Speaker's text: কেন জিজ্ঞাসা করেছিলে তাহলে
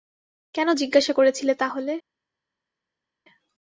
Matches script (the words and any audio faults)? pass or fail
pass